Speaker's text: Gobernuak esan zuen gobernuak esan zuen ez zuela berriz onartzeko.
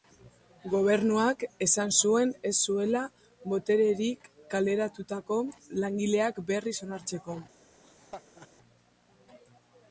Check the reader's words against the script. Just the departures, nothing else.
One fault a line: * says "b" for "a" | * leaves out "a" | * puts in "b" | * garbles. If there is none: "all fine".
* says "ez zuela botererik kaleratutako langileak" for "gobernuak esan zuen ez zuela"